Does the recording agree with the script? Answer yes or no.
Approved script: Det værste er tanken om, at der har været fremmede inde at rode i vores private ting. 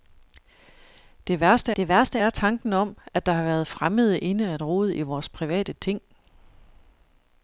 no